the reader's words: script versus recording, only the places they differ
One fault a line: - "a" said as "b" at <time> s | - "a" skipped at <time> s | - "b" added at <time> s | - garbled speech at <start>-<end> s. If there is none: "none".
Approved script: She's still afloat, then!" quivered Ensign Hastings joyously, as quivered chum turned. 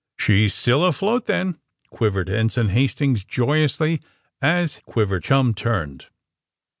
none